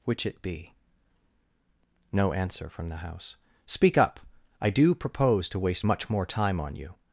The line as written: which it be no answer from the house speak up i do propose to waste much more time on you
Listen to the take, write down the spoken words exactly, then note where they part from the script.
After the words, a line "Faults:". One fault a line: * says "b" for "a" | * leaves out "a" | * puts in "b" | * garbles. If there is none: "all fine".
which it be no answer from the house speak up i do propose to waste much more time on you
Faults:
all fine